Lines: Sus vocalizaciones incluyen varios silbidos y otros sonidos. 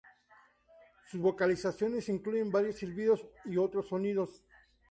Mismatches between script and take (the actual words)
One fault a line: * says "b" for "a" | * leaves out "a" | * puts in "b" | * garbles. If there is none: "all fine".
all fine